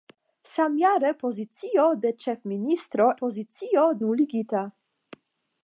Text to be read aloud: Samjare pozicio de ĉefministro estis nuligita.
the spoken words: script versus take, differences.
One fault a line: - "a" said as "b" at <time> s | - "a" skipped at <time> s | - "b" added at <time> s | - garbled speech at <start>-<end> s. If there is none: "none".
- "estis" said as "pozicio" at 3.2 s